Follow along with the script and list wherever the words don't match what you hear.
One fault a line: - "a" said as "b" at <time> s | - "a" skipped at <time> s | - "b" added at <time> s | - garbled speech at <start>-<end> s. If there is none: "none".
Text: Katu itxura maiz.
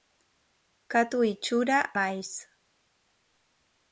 none